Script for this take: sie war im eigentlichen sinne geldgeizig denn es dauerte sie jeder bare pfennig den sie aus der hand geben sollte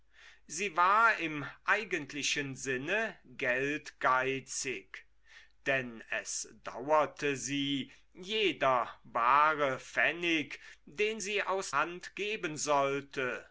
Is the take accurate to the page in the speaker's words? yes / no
no